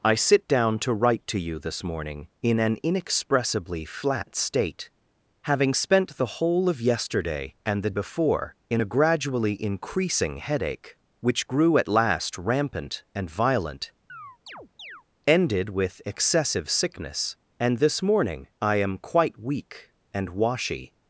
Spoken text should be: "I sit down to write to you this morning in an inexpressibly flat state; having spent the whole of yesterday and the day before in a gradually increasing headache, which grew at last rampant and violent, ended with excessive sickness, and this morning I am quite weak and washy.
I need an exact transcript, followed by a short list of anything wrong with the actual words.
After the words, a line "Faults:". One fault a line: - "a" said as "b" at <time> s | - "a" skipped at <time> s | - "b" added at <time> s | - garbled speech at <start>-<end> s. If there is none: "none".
"I sit down to write to you this morning in an inexpressibly flat state; having spent the whole of yesterday and the before in a gradually increasing headache, which grew at last rampant and violent, ended with excessive sickness, and this morning I am quite weak and washy.
Faults:
- "day" skipped at 8.0 s